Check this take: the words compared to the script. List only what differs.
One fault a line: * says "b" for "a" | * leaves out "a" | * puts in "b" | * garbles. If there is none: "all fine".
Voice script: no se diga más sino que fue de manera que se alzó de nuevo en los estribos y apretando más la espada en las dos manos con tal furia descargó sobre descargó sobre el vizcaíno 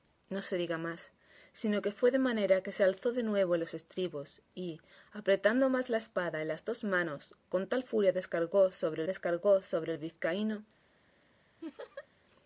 all fine